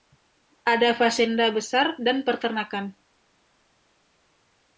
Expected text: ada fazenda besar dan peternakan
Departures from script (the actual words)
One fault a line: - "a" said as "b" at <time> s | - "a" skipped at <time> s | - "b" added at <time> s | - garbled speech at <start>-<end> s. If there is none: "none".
none